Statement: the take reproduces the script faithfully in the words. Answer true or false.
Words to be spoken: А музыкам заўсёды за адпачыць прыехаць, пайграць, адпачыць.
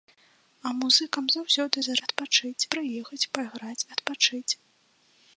true